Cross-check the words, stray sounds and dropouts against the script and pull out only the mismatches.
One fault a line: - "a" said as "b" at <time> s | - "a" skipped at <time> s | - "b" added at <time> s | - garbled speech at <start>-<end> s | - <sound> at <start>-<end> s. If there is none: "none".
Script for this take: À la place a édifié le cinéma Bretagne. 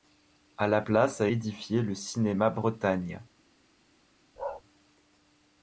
- bark at 4.4-4.6 s